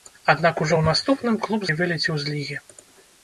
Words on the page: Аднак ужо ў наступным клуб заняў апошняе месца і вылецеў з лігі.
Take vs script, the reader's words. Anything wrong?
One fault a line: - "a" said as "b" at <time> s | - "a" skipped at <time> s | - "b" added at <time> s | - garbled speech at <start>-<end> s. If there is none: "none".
- "заняў апошняе месца" skipped at 1.7 s